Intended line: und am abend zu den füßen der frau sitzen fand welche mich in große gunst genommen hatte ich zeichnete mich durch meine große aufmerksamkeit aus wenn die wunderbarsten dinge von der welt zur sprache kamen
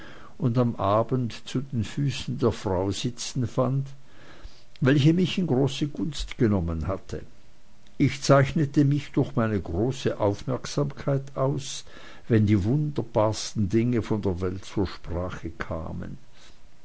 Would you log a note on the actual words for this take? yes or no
no